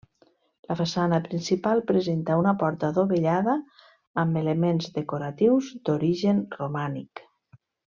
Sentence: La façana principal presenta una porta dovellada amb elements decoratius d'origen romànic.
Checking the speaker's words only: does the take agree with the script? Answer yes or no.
yes